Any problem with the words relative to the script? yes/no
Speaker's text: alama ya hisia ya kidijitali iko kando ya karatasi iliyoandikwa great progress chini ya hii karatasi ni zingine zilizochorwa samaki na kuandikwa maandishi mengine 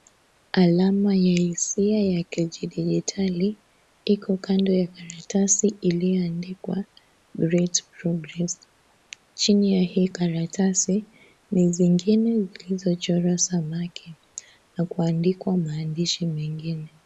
no